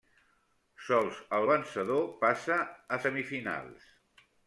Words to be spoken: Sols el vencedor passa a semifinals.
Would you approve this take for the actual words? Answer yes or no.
yes